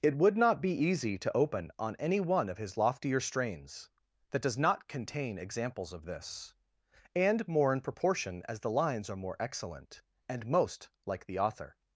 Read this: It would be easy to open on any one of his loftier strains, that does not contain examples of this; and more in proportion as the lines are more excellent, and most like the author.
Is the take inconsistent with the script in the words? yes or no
yes